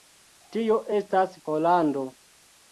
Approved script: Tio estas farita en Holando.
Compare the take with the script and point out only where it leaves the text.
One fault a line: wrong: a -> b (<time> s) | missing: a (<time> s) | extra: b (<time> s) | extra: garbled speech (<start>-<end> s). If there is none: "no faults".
missing: farita en (1.3 s)